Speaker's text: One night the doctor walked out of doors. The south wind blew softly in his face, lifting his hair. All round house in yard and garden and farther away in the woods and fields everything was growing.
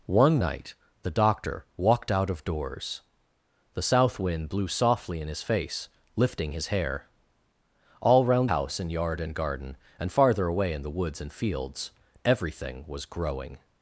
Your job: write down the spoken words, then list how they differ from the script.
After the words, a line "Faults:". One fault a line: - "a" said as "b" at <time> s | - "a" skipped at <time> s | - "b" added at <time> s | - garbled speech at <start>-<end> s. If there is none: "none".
One night the doctor walked out of doors. The south wind blew softly in his face, lifting his hair. All round house in yard and garden and farther away in the woods and fields everything was growing.
Faults:
none